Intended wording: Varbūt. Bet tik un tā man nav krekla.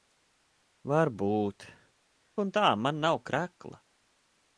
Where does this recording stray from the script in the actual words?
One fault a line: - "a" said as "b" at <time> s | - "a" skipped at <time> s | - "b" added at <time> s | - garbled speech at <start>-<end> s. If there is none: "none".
- "Bet tik" skipped at 1.7 s